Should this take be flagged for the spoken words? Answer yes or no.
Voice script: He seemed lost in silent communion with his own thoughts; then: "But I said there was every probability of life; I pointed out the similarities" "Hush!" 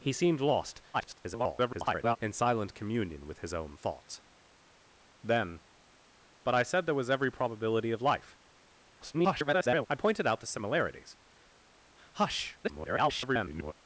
yes